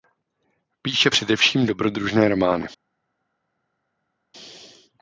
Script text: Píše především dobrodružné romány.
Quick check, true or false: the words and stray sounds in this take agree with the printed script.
true